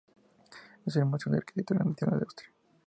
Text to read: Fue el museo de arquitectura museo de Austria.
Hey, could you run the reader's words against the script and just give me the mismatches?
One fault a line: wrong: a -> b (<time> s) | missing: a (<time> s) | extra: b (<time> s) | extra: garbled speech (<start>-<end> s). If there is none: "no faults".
wrong: Fue -> Es (0.8 s)
wrong: museo -> nacional (1.8 s)